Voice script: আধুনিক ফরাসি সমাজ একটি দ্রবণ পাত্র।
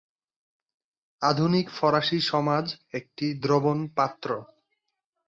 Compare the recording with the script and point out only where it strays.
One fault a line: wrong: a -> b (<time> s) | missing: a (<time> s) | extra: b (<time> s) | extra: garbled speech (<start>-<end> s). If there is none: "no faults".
no faults